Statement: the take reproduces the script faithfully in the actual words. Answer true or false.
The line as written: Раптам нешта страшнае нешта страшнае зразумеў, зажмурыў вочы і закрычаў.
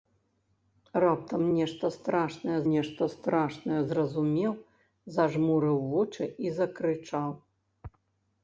true